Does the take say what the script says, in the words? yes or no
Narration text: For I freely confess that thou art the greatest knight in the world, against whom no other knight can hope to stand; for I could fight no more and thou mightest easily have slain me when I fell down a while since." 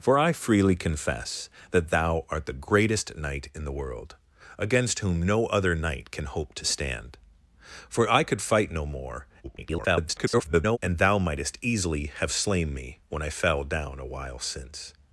no